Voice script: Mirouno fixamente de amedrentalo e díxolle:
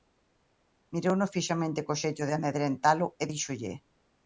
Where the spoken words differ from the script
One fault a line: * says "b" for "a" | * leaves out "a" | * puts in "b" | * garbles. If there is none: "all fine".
* puts in "co xeito"